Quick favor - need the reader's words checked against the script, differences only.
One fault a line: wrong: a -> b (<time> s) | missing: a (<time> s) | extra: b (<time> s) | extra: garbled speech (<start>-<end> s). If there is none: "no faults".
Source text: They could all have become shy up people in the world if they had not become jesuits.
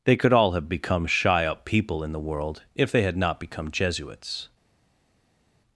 no faults